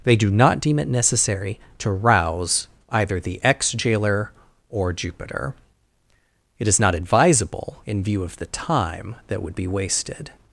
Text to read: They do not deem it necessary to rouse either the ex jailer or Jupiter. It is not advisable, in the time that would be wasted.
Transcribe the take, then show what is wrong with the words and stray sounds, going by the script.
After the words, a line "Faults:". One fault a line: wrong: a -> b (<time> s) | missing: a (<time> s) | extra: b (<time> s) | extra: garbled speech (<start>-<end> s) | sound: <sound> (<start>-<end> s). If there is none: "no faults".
They do not deem it necessary to rouse either the ex jailer or Jupiter. It is not advisable, in view of the time that would be wasted.
Faults:
extra: view of (8.0 s)